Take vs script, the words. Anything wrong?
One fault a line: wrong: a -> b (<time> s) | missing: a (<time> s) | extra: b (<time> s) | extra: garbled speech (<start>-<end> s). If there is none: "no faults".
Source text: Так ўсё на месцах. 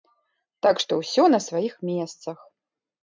extra: што (0.8 s)
extra: сваіх (1.5 s)